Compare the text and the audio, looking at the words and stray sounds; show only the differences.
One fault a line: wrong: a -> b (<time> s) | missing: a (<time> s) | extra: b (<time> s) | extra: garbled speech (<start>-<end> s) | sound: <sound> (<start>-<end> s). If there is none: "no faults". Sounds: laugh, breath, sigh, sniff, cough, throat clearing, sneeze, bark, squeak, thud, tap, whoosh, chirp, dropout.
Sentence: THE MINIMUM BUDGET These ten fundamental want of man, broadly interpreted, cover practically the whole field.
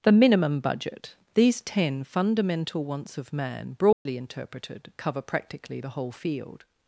wrong: want -> wants (2.8 s)
sound: dropout (3.9-4.1 s)